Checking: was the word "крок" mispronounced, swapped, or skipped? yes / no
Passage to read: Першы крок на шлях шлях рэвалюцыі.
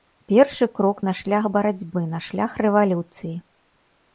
no